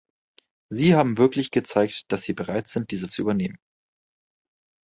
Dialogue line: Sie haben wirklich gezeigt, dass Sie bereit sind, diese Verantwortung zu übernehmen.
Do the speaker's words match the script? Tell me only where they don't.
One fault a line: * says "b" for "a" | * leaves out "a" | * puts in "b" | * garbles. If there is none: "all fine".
* leaves out "Verantwortung"